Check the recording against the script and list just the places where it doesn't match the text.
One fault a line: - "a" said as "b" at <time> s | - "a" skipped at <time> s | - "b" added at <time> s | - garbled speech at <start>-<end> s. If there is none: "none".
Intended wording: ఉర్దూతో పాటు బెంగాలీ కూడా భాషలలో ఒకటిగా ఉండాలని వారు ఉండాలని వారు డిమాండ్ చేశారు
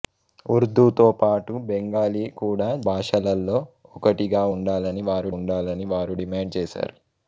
none